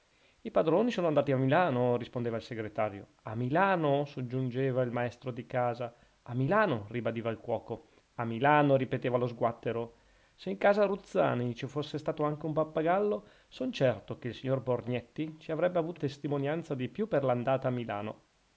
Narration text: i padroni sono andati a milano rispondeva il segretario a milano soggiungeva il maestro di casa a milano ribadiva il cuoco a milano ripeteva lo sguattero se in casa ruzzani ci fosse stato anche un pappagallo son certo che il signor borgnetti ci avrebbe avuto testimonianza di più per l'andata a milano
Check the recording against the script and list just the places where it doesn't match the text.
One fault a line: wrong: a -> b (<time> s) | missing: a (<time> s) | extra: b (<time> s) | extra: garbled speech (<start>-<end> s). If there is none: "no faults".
no faults